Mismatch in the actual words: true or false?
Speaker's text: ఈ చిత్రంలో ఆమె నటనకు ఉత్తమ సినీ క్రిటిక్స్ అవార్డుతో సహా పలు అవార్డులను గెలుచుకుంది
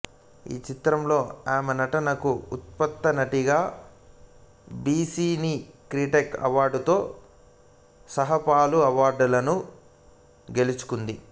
true